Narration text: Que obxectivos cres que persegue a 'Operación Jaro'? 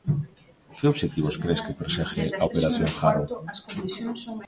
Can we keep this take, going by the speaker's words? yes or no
yes